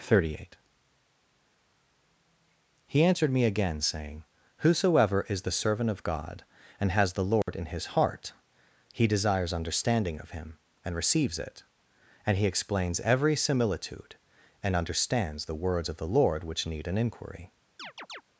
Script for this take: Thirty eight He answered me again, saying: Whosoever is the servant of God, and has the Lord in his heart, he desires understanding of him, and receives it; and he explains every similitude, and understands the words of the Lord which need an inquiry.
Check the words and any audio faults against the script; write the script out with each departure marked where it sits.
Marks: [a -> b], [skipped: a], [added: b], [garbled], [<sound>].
Thirty eight He answered me again, saying: Whosoever is the servant of God, and has the Lord [dropout] in his heart, he desires understanding of him, and receives it; and he explains every similitude, and understands the words of the Lord which need an inquiry. [chirp]